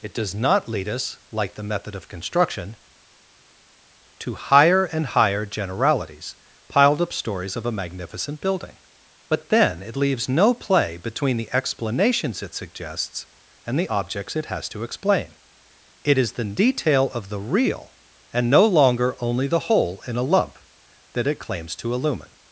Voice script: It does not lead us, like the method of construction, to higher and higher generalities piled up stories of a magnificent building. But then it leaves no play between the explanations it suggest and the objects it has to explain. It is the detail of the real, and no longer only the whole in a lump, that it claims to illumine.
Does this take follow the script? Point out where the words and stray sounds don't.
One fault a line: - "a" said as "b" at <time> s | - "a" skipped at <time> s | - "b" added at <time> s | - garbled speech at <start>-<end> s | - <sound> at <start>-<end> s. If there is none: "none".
- "suggest" said as "suggests" at 12.5 s